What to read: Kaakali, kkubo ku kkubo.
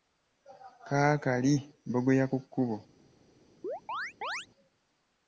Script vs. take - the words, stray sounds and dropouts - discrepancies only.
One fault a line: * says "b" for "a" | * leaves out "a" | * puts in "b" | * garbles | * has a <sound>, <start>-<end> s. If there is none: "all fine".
* says "bbogoya" for "kkubo"
* has a chirp, 3.6-4.5 s